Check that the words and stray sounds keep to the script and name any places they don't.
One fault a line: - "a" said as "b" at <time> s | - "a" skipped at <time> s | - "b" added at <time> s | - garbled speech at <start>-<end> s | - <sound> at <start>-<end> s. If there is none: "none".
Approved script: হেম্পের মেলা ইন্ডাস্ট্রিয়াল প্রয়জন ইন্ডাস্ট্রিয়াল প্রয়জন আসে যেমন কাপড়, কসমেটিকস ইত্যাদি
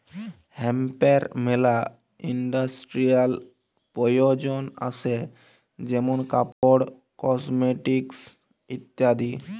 - "ইন্ডাস্ট্রিয়াল প্রয়জন" skipped at 4.6 s
- dropout at 6.5-6.6 s